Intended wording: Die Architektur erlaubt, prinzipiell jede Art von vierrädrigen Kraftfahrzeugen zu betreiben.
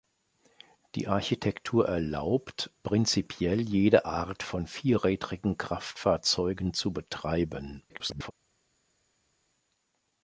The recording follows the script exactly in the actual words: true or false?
false